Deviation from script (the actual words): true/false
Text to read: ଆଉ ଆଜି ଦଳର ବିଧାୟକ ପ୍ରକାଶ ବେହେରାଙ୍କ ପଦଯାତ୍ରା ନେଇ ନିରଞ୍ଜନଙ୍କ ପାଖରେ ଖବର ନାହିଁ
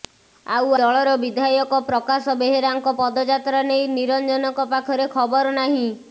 true